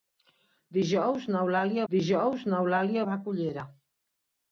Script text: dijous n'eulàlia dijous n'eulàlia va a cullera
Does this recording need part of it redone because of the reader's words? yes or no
no